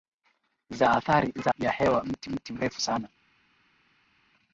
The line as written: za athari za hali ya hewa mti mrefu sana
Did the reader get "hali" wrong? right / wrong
wrong